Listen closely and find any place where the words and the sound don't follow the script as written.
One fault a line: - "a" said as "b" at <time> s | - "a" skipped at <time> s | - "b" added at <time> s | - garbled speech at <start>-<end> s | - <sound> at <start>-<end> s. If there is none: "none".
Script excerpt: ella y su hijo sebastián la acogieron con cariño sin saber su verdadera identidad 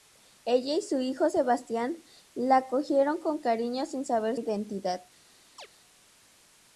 - "su verdadera" skipped at 4.4 s
- chirp at 5.6-5.7 s